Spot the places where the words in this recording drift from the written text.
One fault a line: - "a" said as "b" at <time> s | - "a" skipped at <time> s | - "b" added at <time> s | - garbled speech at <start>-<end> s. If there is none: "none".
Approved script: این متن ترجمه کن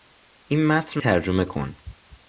none